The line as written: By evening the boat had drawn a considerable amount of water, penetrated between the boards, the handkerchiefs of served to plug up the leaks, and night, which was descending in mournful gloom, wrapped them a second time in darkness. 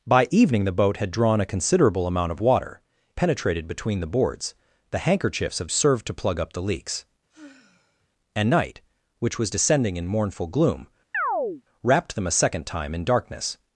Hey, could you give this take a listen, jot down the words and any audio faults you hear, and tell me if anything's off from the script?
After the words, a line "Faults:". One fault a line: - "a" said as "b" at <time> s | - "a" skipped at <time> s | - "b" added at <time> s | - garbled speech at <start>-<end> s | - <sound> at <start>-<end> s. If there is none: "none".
By evening the boat had drawn a considerable amount of water, penetrated between the boards, the handkerchiefs of served to plug up the leaks, and night, which was descending in mournful gloom, wrapped them a second time in darkness.
Faults:
- sigh at 7.3-8.1 s
- chirp at 11.1-11.6 s